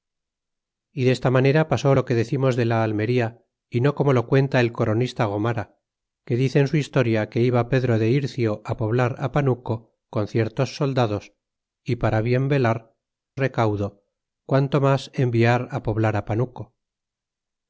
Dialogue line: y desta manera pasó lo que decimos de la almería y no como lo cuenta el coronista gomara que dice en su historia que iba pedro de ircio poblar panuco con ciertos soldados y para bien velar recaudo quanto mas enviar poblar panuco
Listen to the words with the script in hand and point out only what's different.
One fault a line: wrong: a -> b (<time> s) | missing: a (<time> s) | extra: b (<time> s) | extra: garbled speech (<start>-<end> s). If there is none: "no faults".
no faults